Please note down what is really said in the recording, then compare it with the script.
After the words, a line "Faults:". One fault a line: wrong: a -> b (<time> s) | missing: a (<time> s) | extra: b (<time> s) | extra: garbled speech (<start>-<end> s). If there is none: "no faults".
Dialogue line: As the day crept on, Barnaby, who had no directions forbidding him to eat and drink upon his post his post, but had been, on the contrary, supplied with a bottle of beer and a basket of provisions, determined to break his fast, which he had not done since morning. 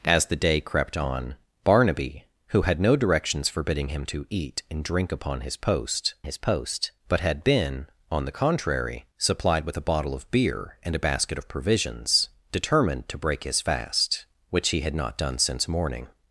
As the day crept on, Barnaby, who had no directions forbidding him to eat and drink upon his post his post, but had been, on the contrary, supplied with a bottle of beer and a basket of provisions, determined to break his fast, which he had not done since morning.
Faults:
no faults